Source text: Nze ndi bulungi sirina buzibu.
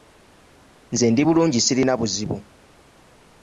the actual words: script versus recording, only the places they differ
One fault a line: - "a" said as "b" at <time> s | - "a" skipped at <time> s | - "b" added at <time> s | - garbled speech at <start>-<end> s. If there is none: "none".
none